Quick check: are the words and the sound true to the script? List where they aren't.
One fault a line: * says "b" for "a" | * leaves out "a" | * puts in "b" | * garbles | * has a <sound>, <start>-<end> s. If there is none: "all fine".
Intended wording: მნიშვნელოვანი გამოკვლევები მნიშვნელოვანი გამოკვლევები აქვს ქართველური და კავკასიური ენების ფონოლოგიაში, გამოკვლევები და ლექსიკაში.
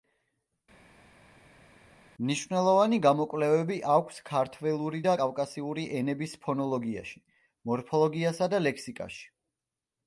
* leaves out "მნიშვნელოვანი გამოკვლევები"
* says "მორფოლოგიასა" for "გამოკვლევები"